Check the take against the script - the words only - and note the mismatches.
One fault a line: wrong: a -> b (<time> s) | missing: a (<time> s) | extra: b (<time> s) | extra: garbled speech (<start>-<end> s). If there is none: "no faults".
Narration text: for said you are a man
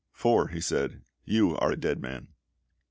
extra: he (0.5 s)
extra: dead (1.8 s)